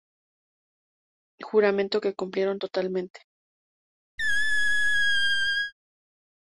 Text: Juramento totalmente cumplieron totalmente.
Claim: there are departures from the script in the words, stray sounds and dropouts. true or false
true